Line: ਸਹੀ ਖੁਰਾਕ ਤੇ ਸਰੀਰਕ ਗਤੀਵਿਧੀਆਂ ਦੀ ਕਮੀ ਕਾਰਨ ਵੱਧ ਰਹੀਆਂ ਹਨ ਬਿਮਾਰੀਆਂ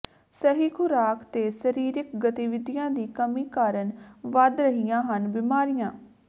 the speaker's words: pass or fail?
pass